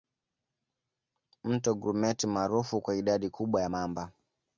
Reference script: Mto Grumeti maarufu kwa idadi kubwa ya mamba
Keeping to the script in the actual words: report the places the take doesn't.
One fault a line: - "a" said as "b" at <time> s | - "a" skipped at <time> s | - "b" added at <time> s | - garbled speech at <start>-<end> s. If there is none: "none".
none